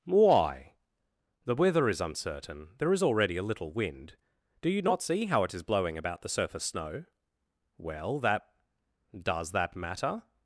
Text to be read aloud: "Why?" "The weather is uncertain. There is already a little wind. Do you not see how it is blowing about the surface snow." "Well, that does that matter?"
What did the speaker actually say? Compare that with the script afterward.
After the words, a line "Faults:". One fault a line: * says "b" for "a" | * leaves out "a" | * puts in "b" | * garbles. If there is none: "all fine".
"Why?" "The weather is uncertain. There is already a little wind. Do you not see how it is blowing about the surface snow." "Well, that does that matter?"
Faults:
all fine